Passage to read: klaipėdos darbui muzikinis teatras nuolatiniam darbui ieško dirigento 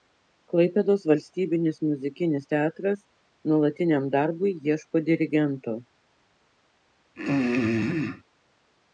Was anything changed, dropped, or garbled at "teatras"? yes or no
no